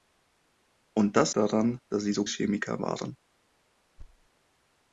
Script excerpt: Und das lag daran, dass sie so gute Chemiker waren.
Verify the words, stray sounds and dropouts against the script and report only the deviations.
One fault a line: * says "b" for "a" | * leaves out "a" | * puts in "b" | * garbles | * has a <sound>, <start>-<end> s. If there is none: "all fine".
* leaves out "lag"
* leaves out "gute"
* has a thud, 4.0-4.3 s